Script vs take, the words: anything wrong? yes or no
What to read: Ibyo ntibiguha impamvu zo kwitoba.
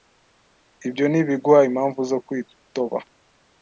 no